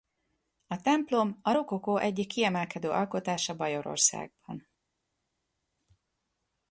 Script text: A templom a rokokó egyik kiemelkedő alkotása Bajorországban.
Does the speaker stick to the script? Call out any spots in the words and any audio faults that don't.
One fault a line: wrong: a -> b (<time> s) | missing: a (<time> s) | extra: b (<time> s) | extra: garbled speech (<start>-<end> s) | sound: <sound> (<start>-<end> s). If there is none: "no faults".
no faults